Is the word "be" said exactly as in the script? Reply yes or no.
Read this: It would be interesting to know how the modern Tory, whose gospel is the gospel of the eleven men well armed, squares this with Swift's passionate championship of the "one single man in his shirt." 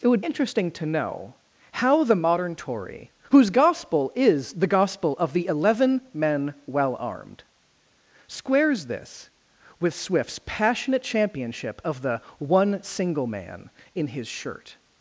no